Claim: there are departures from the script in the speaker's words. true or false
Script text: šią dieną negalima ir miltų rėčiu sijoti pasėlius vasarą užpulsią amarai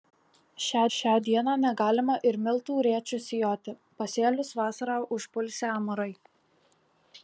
true